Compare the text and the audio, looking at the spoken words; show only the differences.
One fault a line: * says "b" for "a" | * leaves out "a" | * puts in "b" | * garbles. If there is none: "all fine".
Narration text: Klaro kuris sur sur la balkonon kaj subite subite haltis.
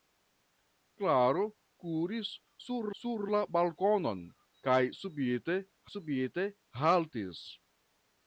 all fine